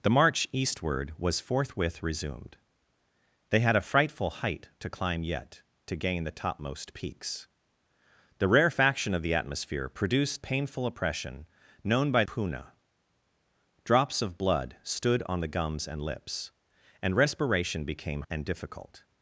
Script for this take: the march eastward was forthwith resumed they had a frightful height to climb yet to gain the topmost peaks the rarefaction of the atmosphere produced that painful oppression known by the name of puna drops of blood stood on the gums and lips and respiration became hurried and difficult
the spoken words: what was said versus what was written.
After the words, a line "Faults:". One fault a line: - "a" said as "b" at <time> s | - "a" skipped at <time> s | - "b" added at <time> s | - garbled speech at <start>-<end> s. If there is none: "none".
the march eastward was forthwith resumed they had a frightful height to climb yet to gain the topmost peaks the rarefaction of the atmosphere produced painful oppression known by puna drops of blood stood on the gums and lips and respiration became and difficult
Faults:
- "that" skipped at 10.4 s
- "the name of" skipped at 12.2 s
- "hurried" skipped at 18.2 s